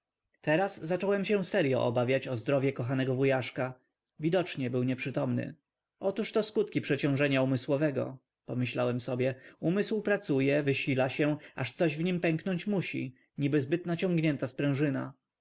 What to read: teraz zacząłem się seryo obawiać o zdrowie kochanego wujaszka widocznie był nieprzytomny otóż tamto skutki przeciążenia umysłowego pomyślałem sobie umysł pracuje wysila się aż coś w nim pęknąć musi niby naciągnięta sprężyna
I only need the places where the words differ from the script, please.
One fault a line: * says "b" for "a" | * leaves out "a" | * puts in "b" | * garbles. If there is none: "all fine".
* says "to" for "tamto"
* puts in "zbyt"